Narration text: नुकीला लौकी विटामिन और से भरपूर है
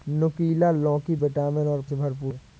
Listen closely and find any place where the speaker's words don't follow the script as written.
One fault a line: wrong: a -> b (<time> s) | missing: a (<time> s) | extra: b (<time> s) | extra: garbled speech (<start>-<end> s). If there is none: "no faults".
no faults